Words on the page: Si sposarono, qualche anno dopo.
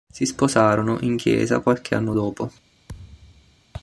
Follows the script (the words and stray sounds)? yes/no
no